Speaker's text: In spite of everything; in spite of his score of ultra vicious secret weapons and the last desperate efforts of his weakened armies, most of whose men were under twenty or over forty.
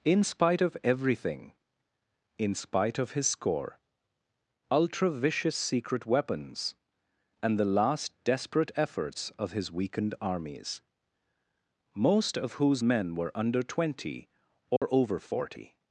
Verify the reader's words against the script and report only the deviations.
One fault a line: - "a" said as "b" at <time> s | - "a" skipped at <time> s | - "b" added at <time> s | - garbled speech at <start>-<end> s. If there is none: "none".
- "of" skipped at 3.8 s